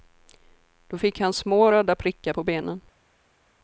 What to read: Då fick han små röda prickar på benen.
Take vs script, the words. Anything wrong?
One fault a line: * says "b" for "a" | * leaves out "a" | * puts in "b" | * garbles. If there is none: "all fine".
all fine